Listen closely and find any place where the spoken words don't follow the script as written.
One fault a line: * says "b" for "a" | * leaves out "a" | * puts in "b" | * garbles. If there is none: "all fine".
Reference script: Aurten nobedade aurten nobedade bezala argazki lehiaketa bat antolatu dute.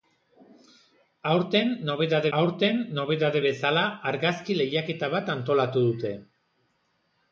all fine